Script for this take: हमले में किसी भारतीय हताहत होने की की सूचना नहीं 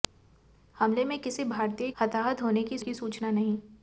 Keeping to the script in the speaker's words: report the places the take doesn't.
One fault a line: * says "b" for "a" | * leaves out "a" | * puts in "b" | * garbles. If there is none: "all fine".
all fine